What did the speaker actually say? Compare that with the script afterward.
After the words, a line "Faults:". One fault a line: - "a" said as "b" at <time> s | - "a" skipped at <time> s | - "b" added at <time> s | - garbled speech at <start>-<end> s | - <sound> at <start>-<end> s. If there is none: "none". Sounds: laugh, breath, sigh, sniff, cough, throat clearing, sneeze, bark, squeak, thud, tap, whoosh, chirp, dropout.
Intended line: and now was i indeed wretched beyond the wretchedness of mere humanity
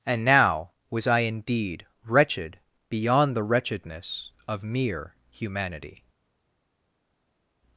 and now was i indeed wretched beyond the wretchedness of mere humanity
Faults:
none